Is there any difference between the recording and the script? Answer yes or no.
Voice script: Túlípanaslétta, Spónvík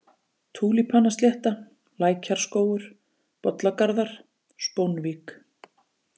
yes